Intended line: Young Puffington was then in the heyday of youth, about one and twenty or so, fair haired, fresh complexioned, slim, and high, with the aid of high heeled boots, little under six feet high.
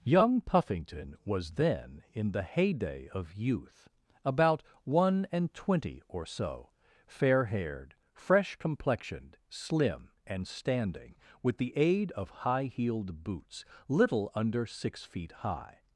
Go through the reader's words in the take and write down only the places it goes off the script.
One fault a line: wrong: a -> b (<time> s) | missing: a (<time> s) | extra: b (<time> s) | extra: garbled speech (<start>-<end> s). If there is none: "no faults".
wrong: high -> standing (10.5 s)